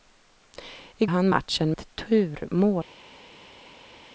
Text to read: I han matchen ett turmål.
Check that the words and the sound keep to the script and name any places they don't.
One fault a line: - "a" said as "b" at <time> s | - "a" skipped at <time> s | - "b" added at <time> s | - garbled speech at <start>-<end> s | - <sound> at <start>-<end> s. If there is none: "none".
none